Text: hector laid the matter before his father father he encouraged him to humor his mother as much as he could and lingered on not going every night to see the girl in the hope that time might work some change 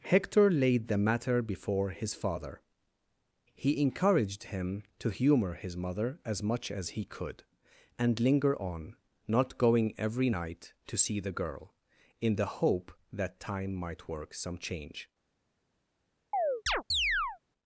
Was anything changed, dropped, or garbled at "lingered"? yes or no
yes